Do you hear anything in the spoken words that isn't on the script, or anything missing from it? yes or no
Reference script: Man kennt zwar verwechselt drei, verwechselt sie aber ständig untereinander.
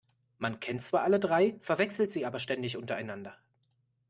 yes